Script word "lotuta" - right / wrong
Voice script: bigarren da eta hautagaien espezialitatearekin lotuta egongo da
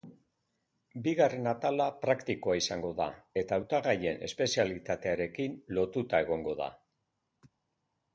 right